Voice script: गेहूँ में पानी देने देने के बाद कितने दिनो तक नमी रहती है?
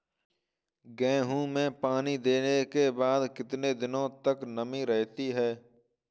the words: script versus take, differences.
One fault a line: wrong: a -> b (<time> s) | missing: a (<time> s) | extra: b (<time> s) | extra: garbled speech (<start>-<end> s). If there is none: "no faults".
missing: देने (2.6 s)